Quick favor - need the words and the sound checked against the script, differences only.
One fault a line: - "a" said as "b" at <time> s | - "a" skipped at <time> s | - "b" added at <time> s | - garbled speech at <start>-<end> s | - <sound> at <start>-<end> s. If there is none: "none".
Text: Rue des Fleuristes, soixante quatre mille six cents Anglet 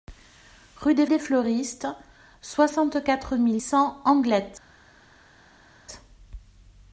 - "des" added at 1.1 s
- "six" skipped at 3.6 s